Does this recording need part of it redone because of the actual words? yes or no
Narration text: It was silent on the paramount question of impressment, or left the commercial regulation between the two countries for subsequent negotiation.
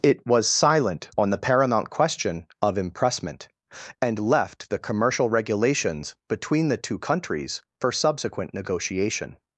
yes